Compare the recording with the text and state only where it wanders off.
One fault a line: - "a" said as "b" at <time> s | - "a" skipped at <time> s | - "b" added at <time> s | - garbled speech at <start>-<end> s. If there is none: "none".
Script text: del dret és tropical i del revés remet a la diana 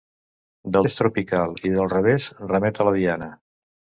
- "dret" skipped at 0.9 s